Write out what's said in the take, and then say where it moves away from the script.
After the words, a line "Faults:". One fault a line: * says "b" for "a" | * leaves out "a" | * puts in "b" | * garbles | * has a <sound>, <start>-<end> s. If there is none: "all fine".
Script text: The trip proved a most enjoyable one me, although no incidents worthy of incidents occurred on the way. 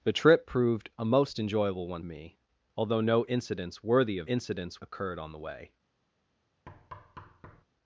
The trip proved a most enjoyable one me, although no incidents worthy of incidents occurred on the way.
Faults:
* has a thud, 6.7-7.6 s